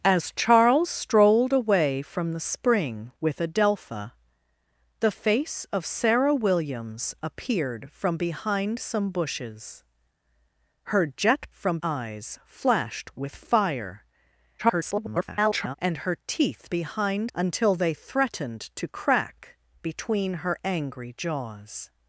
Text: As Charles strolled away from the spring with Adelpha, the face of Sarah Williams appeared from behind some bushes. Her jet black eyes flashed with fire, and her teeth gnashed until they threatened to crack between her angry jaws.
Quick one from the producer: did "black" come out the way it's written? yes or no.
no